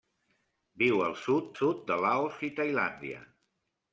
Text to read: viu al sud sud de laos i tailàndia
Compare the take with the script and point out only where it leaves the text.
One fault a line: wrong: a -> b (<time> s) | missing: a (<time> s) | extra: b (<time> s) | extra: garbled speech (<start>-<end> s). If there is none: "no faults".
no faults